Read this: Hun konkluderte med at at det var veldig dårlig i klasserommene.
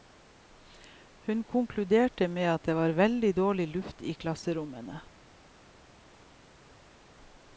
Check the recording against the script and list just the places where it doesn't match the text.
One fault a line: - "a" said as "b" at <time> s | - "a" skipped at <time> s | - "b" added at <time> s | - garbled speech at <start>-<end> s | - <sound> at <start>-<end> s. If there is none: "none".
- "at" skipped at 2.6 s
- "luft" added at 3.7 s